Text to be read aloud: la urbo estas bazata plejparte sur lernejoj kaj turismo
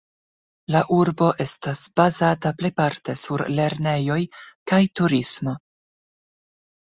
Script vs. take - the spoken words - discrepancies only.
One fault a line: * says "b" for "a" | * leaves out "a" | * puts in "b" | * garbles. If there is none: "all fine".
all fine